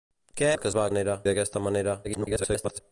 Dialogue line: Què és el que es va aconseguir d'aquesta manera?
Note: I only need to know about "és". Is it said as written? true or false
false